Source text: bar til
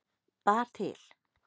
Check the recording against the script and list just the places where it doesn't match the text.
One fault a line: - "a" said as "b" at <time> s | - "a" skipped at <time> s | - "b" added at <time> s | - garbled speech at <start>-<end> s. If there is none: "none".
none